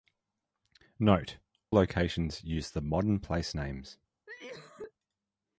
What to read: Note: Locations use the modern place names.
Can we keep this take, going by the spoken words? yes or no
yes